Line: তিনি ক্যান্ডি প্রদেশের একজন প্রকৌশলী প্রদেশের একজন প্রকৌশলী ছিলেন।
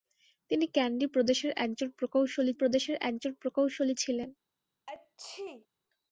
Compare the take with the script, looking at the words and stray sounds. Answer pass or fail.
fail